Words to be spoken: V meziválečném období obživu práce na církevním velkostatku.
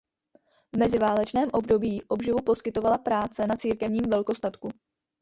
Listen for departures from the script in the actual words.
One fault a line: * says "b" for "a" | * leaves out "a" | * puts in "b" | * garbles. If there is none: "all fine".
* puts in "poskytovala"